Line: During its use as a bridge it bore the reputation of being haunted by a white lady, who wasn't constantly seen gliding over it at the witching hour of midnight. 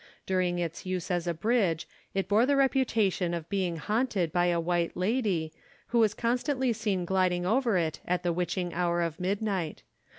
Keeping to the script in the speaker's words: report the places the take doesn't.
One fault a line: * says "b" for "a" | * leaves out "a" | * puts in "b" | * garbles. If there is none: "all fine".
* says "was" for "wasn't"